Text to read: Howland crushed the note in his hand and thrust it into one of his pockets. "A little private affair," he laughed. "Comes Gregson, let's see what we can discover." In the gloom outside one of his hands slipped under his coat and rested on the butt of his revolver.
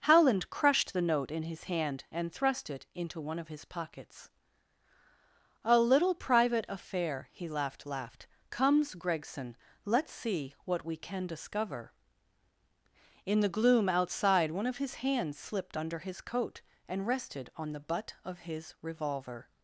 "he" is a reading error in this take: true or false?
false